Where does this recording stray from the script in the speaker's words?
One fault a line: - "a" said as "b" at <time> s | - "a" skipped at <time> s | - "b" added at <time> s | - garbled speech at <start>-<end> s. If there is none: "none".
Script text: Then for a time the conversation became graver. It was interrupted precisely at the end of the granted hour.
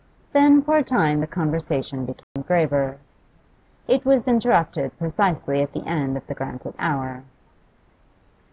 none